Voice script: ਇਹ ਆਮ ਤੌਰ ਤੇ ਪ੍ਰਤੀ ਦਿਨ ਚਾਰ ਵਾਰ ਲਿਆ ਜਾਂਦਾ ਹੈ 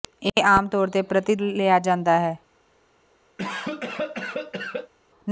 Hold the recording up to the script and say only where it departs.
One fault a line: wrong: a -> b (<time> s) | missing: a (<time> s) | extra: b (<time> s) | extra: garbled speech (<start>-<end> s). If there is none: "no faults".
missing: ਦਿਨ ਚਾਰ ਵਾਰ (1.4 s)